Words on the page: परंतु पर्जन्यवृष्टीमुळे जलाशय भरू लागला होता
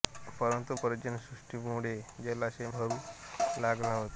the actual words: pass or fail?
pass